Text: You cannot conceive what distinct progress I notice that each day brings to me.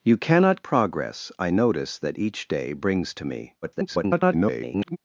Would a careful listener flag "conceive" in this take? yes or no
yes